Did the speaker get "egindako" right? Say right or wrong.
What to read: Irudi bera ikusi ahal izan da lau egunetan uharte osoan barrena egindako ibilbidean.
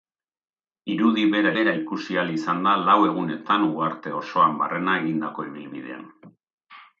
right